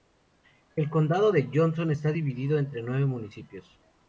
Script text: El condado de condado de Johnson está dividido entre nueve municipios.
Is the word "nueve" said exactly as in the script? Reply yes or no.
yes